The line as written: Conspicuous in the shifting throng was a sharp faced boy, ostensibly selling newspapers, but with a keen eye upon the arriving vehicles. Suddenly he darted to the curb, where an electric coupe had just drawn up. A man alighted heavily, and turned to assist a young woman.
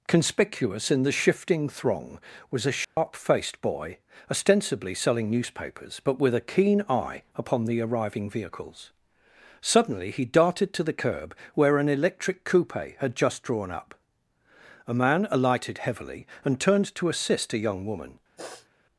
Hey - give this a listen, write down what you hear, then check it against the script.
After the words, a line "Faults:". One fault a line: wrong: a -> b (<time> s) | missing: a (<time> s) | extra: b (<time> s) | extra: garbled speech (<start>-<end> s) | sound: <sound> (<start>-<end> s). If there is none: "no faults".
Conspicuous in the shifting throng was a sharp faced boy, ostensibly selling newspapers, but with a keen eye upon the arriving vehicles. Suddenly he darted to the curb, where an electric coupe had just drawn up. A man alighted heavily, and turned to assist a young woman.
Faults:
sound: dropout (2.8-3.0 s)
sound: sniff (18.4-18.7 s)